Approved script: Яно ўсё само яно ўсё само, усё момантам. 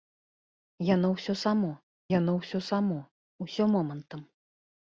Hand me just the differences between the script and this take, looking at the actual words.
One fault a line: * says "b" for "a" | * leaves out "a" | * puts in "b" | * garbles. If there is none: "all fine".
all fine